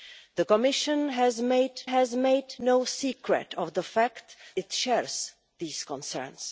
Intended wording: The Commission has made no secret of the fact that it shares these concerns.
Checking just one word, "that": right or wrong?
wrong